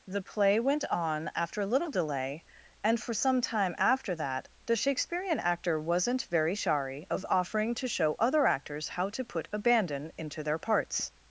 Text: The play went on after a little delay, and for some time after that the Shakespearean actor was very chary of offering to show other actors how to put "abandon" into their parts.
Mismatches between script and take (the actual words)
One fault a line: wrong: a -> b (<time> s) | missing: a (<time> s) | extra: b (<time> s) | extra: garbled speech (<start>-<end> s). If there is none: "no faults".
wrong: was -> wasn't (5.8 s)